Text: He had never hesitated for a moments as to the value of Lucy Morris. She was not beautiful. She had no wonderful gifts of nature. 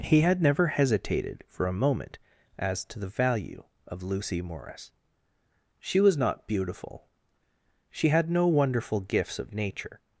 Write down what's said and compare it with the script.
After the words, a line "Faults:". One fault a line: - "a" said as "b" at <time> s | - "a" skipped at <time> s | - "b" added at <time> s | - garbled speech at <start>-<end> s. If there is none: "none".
He had never hesitated for a moment as to the value of Lucy Morris. She was not beautiful. She had no wonderful gifts of nature.
Faults:
- "moments" said as "moment" at 1.7 s